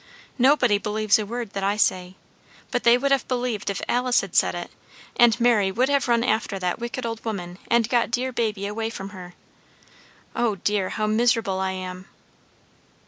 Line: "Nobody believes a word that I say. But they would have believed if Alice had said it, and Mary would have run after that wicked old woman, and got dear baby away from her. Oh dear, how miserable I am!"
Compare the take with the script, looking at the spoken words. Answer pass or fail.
pass